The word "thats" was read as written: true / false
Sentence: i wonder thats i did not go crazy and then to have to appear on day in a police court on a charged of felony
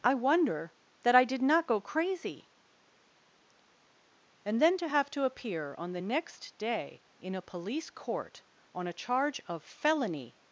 false